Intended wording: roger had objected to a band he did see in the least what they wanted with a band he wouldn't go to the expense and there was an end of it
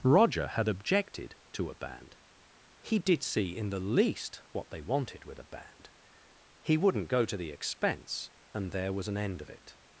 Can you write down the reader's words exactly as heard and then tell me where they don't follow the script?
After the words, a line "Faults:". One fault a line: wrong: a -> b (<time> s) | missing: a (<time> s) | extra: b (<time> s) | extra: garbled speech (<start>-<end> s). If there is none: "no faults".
roger had objected to a band he did see in the least what they wanted with a band he wouldn't go to the expense and there was an end of it
Faults:
no faults